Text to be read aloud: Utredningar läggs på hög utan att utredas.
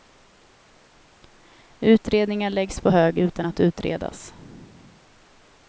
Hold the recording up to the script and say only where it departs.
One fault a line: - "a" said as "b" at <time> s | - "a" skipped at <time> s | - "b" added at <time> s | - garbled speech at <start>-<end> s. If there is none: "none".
none